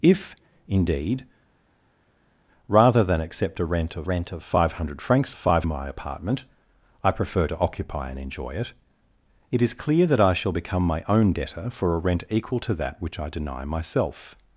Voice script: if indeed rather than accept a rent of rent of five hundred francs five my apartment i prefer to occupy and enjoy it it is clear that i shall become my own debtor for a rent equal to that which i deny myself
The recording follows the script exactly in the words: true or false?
true